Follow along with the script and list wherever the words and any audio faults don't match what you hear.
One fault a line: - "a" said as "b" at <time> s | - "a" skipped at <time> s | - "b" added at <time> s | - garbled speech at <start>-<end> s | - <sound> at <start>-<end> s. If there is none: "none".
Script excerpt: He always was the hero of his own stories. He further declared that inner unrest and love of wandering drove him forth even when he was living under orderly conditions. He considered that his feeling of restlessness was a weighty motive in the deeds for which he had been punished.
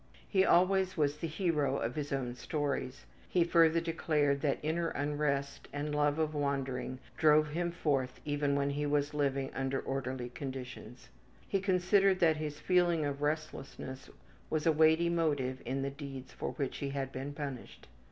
none